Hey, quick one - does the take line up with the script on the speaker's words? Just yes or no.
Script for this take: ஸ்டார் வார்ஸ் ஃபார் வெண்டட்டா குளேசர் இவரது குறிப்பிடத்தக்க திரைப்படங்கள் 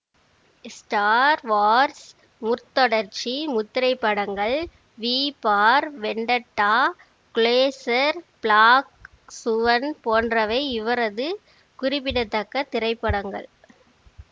no